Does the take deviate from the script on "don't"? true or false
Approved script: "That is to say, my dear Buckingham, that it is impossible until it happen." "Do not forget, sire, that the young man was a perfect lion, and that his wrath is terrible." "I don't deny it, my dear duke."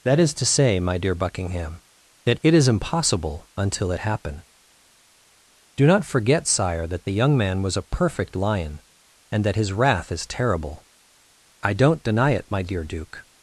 false